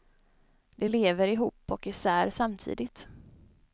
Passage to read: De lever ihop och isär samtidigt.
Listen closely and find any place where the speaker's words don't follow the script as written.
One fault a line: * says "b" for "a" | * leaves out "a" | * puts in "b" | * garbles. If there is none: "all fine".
all fine